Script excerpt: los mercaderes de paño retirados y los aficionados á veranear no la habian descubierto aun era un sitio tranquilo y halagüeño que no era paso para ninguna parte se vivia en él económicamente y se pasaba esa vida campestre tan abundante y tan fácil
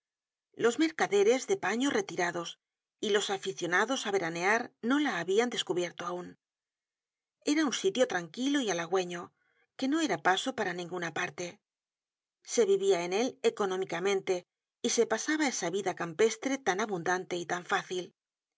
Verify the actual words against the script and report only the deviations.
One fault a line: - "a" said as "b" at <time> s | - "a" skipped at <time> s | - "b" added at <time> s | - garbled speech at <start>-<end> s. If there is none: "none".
none